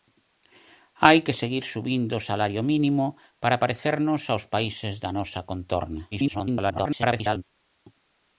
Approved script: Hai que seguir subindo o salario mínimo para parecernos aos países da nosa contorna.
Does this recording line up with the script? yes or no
no